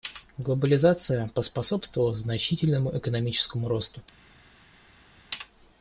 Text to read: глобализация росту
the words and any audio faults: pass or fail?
fail